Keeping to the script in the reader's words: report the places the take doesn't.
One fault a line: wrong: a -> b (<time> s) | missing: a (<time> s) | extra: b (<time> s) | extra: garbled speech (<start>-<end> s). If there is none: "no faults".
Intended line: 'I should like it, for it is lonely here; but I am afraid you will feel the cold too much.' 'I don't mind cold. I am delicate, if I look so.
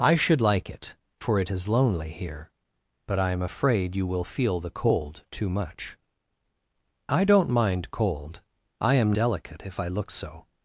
no faults